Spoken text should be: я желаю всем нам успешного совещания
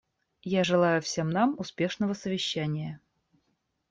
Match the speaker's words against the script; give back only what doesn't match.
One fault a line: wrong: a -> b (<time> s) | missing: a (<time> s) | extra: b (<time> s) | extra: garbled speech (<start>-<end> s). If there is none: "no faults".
no faults